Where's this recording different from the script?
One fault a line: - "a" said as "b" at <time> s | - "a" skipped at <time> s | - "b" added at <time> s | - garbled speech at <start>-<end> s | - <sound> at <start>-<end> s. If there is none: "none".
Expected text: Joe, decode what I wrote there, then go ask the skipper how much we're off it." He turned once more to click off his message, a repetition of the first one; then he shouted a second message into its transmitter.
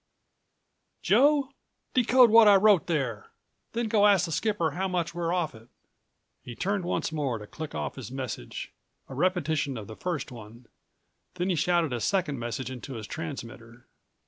- "its" said as "his" at 12.9 s